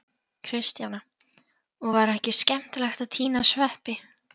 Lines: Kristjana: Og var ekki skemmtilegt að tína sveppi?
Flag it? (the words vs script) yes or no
no